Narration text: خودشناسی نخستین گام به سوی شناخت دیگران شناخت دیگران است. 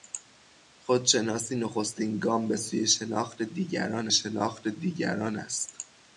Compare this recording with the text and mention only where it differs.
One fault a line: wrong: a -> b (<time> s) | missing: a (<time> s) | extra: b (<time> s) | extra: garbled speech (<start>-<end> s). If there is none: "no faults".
no faults